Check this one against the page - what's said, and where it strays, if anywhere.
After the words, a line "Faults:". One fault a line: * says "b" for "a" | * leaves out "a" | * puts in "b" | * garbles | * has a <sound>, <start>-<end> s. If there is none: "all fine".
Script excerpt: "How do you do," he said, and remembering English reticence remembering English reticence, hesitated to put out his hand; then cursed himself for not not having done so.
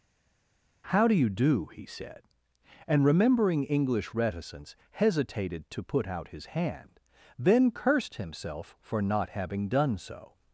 "How do you do," he said, and remembering English reticence, hesitated to put out his hand; then cursed himself for not having done so.
Faults:
* leaves out "remembering English reticence"
* leaves out "not"